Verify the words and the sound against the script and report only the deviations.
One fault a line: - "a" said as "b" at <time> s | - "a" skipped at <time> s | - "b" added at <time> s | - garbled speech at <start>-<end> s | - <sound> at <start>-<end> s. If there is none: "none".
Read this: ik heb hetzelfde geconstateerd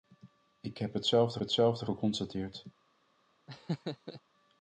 - "hetzelfde" added at 1.4 s
- laugh at 3.5-4.2 s